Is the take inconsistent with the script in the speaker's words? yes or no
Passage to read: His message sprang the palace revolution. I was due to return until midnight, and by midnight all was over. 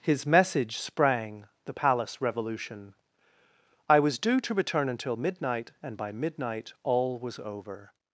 no